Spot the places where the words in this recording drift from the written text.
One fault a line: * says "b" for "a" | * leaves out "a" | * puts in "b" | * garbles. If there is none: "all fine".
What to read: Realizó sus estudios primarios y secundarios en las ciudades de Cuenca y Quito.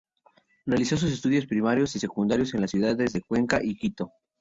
all fine